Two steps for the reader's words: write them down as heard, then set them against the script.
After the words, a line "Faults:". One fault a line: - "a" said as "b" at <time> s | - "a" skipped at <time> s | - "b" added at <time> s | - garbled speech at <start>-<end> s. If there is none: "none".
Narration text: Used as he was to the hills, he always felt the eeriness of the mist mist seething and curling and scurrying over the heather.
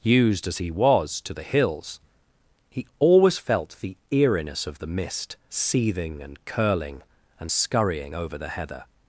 Used as he was to the hills, he always felt the eeriness of the mist seething and curling and scurrying over the heather.
Faults:
- "mist" skipped at 5.4 s